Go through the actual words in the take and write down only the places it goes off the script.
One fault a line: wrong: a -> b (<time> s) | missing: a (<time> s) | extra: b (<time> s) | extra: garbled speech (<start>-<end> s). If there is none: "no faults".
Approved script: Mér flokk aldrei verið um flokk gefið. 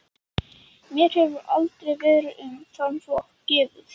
wrong: flokk -> hefur (1.2 s)
extra: þann (2.8 s)